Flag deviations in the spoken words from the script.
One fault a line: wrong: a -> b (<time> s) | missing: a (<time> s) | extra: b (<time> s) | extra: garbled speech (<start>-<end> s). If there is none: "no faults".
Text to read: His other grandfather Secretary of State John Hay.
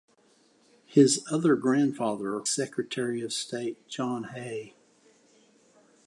no faults